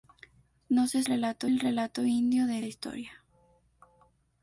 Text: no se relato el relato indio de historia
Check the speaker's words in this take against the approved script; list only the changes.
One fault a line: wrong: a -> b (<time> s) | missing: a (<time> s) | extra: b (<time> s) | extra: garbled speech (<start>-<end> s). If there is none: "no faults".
no faults